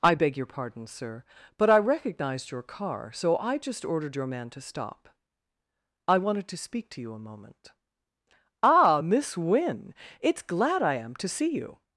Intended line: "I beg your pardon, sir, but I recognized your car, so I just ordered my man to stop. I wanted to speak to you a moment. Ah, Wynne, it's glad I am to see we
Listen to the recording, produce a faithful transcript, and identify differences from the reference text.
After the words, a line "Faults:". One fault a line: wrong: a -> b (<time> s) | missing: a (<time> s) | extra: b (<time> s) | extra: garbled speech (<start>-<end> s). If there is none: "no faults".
"I beg your pardon, sir, but I recognized your car, so I just ordered your man to stop. I wanted to speak to you a moment. Ah, Miss Wynne, it's glad I am to see you
Faults:
wrong: my -> your (4.1 s)
extra: Miss (9.0 s)
wrong: we -> you (11.5 s)